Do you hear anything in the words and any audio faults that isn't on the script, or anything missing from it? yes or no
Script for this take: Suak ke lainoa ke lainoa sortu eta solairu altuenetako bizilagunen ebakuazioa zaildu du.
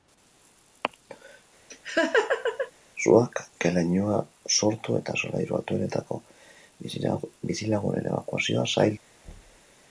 yes